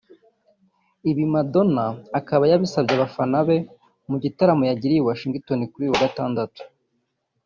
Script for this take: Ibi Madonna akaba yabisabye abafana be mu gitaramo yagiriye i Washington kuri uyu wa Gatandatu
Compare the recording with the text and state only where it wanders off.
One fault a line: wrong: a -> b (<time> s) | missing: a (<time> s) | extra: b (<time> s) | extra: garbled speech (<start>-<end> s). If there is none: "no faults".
no faults